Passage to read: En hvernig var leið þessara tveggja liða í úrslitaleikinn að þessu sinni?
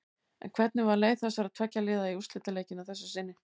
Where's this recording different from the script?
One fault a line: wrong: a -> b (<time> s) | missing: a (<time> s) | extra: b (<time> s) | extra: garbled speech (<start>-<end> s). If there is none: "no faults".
no faults